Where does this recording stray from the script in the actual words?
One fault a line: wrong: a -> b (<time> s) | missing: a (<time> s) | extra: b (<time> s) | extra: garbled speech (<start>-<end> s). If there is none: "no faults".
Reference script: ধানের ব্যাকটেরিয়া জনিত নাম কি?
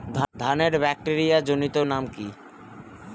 no faults